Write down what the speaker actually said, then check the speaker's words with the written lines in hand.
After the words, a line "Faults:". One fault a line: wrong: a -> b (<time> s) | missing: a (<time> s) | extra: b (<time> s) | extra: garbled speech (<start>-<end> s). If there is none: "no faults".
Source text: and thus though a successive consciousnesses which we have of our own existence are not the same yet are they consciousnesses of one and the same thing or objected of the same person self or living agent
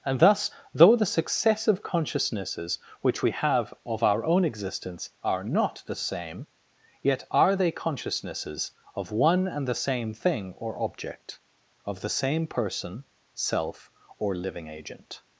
and thus though the successive consciousnesses which we have of our own existence are not the same yet are they consciousnesses of one and the same thing or object of the same person self or living agent
Faults:
wrong: a -> the (0.9 s)
wrong: objected -> object (10.8 s)